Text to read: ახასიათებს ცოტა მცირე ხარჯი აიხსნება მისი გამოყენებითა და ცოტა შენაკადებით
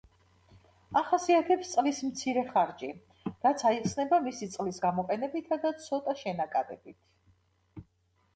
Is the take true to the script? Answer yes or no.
no